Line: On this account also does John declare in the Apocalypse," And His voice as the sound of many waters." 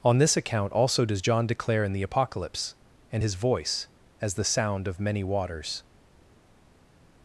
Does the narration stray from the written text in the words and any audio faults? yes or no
no